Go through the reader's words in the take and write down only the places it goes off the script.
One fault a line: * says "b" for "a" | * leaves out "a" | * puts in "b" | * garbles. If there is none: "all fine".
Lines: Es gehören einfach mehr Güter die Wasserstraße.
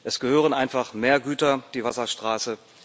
all fine